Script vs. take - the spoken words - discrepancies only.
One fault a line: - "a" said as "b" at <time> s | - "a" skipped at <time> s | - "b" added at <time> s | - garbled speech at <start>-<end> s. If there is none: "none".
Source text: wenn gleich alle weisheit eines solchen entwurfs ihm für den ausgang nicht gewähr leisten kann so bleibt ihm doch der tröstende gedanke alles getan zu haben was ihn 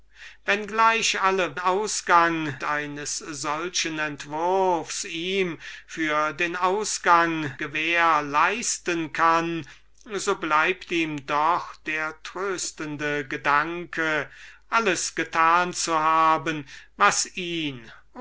- "weisheit" said as "ausgang" at 1.6 s
- "nicht" skipped at 7.5 s